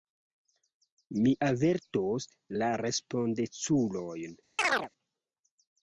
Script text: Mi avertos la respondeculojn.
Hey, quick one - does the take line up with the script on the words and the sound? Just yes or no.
no